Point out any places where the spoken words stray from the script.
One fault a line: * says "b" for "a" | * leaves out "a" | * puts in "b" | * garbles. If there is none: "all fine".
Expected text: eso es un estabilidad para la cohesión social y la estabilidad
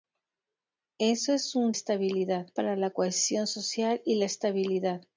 all fine